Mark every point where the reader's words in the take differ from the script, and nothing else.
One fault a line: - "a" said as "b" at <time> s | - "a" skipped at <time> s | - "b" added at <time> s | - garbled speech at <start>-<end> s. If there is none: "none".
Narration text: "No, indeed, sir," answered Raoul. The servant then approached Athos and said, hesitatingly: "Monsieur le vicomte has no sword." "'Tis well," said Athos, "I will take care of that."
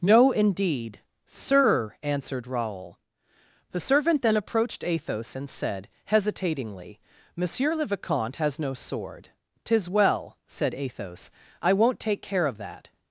- "will" said as "won't" at 11.7 s